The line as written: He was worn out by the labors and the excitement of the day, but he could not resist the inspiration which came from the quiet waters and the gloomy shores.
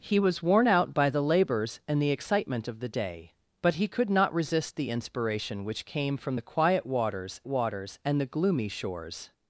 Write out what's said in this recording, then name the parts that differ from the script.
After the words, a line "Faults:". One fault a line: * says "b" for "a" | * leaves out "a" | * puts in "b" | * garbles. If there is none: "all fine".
He was worn out by the labors and the excitement of the day, but he could not resist the inspiration which came from the quiet waters waters and the gloomy shores.
Faults:
* puts in "waters"